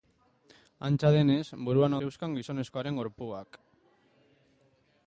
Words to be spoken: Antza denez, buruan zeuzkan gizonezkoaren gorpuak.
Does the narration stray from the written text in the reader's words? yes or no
no